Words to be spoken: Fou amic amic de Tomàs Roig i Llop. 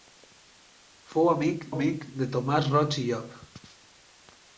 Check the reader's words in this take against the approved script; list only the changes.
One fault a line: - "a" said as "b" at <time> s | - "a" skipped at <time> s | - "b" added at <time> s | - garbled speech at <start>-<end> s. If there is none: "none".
none